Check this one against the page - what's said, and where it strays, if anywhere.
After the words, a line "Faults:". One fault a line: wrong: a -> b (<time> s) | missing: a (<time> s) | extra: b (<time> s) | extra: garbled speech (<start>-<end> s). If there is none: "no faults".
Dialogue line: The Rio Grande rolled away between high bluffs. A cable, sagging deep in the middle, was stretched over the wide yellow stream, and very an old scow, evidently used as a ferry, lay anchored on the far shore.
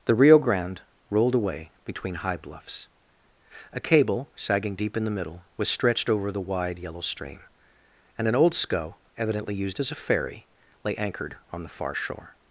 The Rio Grande rolled away between high bluffs. A cable, sagging deep in the middle, was stretched over the wide yellow stream, and an old scow, evidently used as a ferry, lay anchored on the far shore.
Faults:
missing: very (8.3 s)